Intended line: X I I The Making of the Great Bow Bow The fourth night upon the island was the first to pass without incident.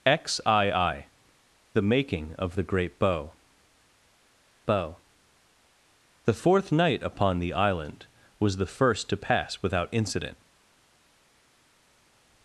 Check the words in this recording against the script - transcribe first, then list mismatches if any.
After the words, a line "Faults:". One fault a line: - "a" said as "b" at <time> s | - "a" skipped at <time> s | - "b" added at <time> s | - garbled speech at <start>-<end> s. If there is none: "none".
X I I The Making of the Great Bow Bow The fourth night upon the island was the first to pass without incident.
Faults:
none